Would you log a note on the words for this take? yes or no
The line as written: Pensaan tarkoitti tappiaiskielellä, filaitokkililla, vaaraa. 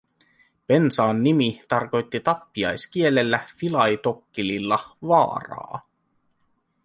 yes